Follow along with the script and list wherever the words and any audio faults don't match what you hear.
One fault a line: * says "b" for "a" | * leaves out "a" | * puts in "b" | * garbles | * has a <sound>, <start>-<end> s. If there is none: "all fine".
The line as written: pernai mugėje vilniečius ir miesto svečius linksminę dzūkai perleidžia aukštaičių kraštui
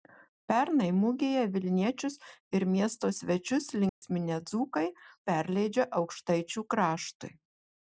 * has a dropout, 3.9-4.0 s